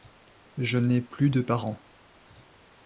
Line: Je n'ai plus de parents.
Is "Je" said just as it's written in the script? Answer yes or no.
yes